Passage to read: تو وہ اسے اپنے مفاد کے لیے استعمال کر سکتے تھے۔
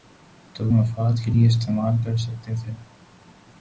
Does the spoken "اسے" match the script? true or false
false